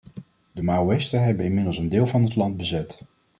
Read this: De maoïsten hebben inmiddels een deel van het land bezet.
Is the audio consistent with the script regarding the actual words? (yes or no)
yes